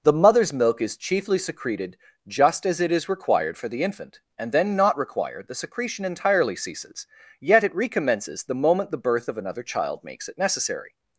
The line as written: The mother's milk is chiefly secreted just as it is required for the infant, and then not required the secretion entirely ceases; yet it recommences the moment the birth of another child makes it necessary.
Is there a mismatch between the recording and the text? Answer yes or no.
no